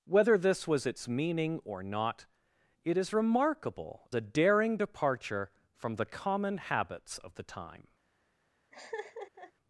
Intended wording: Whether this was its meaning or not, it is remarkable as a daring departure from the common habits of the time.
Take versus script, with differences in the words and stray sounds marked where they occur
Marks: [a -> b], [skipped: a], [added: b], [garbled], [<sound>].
Whether this was its meaning or not, it is remarkable [skipped: as] a daring departure from the common habits of the time. [laugh]